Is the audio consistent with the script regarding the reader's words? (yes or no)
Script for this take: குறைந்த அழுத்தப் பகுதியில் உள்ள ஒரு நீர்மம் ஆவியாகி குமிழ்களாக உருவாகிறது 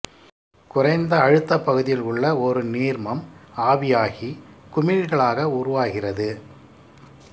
yes